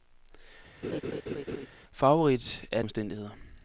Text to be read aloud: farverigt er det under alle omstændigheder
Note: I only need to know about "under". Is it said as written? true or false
false